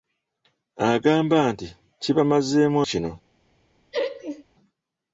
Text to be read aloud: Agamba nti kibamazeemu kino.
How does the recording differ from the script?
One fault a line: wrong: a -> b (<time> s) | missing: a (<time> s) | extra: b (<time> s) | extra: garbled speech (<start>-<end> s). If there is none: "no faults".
no faults